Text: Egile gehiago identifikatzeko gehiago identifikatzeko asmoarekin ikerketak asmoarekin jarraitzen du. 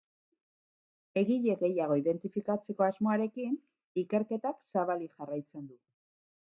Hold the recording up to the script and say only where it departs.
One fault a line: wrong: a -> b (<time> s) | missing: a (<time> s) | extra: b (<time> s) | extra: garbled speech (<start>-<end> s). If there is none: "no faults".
missing: gehiago identifikatzeko (2.9 s)
wrong: asmoarekin -> zabalik (4.7 s)